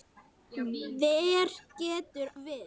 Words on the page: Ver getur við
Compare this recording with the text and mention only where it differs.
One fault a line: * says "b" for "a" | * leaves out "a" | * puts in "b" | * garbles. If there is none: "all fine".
all fine